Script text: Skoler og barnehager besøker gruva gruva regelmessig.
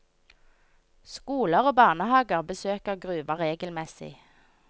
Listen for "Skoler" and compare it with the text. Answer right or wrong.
right